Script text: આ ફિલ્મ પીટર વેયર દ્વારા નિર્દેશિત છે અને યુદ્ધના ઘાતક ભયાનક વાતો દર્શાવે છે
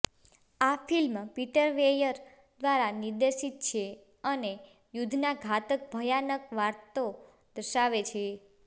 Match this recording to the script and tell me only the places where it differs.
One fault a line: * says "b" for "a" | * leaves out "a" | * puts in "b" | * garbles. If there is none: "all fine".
all fine